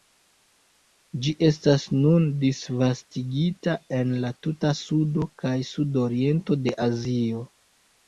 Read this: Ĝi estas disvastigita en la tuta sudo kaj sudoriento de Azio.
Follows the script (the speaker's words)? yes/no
no